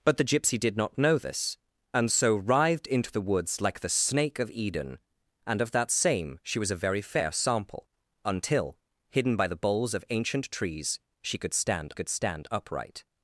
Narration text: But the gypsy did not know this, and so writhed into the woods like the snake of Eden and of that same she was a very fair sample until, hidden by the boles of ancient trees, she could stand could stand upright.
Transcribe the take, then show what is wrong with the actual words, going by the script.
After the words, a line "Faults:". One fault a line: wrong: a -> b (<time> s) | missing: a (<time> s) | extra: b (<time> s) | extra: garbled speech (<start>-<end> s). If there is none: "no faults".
But the gypsy did not know this, and so writhed into the woods like the snake of Eden and of that same she was a very fair sample until, hidden by the boles of ancient trees, she could stand could stand upright.
Faults:
no faults